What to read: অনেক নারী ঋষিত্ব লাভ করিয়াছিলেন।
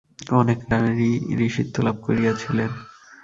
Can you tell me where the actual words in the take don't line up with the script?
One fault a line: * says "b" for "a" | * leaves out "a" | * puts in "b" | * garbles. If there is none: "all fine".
all fine